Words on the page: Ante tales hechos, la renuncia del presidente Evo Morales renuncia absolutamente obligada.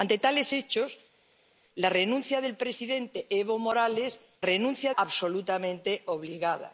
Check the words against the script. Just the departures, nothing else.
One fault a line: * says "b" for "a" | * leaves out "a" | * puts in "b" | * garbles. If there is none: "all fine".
all fine